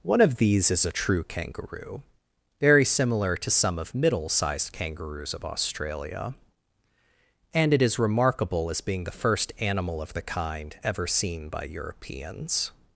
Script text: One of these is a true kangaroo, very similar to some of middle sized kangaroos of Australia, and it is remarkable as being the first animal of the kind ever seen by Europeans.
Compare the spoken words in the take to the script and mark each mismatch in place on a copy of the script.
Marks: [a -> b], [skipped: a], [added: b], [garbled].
One of these is a true kangaroo, very similar to some of middle sized kangaroos of Australia, and it is remarkable as being the first animal of the kind ever seen by Europeans.